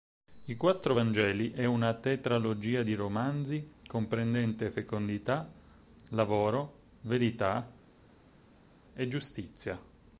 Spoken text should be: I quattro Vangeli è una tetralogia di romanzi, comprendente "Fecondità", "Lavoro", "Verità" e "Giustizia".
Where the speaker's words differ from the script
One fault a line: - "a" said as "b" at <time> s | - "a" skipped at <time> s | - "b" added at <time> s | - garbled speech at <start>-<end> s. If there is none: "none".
none